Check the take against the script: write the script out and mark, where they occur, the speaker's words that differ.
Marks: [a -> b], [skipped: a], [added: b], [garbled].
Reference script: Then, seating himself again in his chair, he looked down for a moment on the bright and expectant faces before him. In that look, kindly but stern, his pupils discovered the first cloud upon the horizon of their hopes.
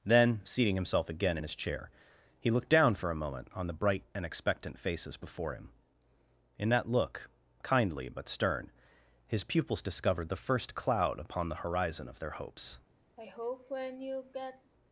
Then, seating himself again in his chair, he looked down for a moment on the bright and expectant faces before him. In that look, kindly but stern, his pupils discovered the first cloud upon the horizon of their hopes.